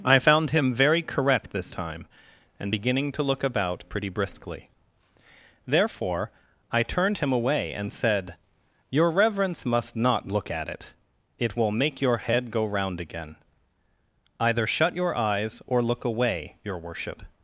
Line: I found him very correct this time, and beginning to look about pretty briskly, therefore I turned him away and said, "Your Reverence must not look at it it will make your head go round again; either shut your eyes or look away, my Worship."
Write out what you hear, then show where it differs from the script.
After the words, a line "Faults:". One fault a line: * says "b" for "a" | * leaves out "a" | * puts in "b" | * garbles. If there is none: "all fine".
I found him very correct this time, and beginning to look about pretty briskly, therefore I turned him away and said, "Your Reverence must not look at it it will make your head go round again; either shut your eyes or look away, your Worship."
Faults:
* says "your" for "my"